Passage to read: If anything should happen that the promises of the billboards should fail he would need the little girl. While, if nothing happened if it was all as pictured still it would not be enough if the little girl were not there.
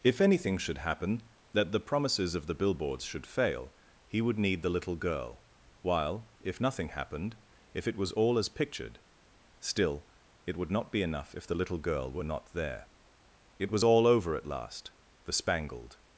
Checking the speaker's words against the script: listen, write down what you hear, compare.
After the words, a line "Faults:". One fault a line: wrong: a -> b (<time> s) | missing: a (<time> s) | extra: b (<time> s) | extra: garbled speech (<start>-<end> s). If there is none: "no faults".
If anything should happen that the promises of the billboards should fail he would need the little girl. While, if nothing happened if it was all as pictured still it would not be enough if the little girl were not there. It was all over at last. The spangled
Faults:
extra: It was all over at last The spangled (13.6 s)